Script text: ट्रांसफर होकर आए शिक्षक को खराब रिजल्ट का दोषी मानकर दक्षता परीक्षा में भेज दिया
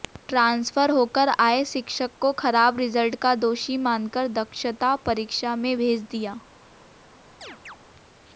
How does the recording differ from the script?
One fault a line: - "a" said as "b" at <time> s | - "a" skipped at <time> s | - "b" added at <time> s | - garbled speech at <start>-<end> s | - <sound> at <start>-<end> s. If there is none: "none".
- chirp at 7.4-7.8 s